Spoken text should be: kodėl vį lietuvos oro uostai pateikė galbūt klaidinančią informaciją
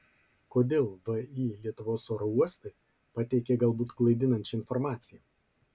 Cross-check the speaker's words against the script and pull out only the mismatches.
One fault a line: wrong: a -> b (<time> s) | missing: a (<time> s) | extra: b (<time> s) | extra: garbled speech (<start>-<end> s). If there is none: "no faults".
no faults